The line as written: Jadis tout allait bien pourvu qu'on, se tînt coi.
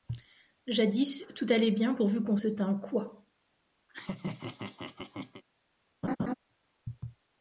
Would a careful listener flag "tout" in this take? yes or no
no